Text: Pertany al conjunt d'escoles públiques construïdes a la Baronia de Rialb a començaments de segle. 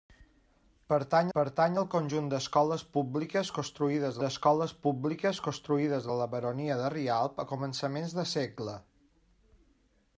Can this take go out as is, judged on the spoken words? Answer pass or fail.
fail